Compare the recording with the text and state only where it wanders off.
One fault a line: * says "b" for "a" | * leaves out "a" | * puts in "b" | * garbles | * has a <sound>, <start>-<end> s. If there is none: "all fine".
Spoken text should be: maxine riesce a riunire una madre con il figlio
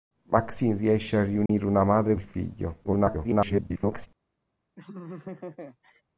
* has a dropout, 1.5-1.5 s
* leaves out "con"
* garbles
* has a laugh, 4.8-6.0 s